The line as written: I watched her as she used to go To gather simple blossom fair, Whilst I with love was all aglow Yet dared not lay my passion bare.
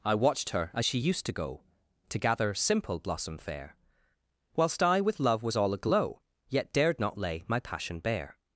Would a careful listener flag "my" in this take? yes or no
no